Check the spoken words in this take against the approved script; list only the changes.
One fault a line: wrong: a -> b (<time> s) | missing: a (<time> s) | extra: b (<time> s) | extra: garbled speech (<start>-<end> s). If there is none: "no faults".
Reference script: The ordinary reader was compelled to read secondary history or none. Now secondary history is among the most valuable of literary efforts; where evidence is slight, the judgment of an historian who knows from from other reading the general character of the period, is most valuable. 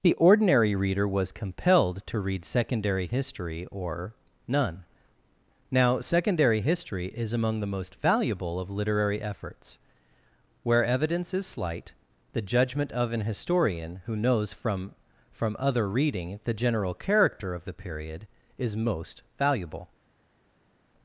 no faults